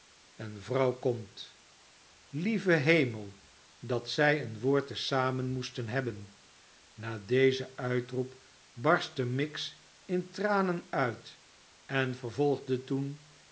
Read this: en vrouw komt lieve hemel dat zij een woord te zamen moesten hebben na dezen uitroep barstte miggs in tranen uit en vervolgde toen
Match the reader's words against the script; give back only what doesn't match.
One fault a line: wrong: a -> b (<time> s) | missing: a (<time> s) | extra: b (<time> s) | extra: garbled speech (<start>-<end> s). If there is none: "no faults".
no faults